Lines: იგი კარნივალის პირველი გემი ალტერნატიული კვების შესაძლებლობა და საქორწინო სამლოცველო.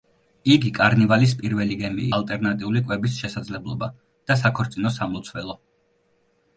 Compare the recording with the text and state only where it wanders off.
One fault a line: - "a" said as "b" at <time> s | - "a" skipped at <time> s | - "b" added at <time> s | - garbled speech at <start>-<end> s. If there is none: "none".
none